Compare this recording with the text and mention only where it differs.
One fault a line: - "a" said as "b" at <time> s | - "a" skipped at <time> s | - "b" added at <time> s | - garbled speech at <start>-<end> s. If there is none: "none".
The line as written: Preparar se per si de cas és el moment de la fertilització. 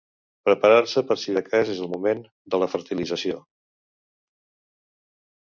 none